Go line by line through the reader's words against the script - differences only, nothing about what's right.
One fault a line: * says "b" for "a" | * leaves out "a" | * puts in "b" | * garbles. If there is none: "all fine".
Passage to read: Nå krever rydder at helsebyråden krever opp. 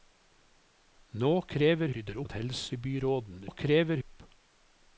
all fine